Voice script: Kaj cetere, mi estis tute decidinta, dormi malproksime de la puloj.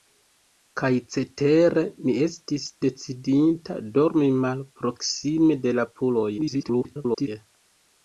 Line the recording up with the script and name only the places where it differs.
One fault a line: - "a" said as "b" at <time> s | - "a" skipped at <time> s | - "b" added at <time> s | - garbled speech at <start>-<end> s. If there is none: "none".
- "tute" skipped at 2.7 s
- garbled speech at 6.4-7.3 s